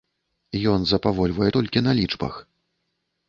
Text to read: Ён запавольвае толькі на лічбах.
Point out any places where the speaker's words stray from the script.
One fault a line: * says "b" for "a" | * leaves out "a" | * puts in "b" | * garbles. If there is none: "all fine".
all fine